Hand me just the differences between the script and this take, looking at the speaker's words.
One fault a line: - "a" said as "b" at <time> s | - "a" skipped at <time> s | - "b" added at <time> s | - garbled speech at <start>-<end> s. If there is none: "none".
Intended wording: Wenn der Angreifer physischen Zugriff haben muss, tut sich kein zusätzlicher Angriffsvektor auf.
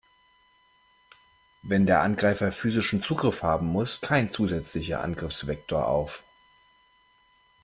- "tut sich" skipped at 4.0 s